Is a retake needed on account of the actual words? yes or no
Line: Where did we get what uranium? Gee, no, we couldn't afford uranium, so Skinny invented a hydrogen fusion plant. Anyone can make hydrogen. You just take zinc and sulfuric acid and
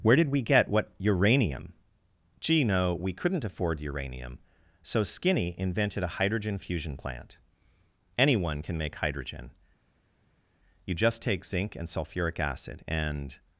no